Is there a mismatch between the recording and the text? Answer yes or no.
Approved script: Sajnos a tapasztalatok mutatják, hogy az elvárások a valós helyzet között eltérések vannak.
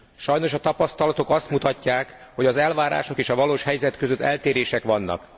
yes